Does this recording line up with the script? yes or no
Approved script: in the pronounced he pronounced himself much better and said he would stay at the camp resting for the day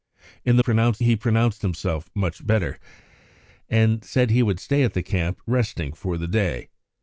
yes